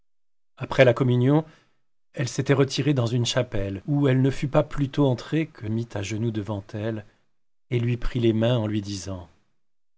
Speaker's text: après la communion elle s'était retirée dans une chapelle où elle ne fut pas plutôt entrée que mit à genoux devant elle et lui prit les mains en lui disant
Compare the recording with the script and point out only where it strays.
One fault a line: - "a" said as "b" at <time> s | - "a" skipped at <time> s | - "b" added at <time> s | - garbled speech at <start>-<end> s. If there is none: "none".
none